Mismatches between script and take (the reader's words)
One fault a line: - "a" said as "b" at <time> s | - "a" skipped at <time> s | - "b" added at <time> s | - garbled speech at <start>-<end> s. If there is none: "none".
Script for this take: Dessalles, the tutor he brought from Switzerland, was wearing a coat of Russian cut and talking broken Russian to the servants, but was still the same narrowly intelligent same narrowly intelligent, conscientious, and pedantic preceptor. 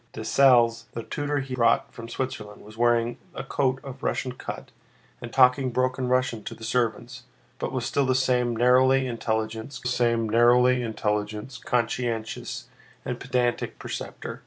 none